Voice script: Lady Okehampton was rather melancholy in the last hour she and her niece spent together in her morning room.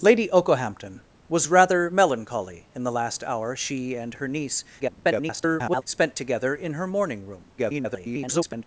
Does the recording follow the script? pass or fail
fail